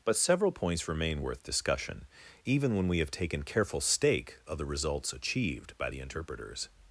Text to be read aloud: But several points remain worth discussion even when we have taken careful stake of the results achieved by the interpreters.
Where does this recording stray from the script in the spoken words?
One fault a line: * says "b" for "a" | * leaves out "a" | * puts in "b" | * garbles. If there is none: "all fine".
all fine